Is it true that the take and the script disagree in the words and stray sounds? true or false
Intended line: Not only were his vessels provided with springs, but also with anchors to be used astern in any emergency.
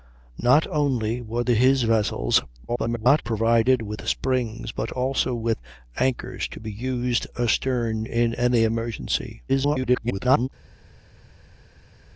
true